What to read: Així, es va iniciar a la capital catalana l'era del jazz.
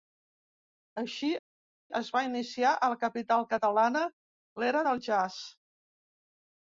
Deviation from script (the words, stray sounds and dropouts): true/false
false